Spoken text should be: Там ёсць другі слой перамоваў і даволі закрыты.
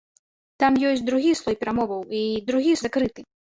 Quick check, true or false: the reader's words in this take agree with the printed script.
false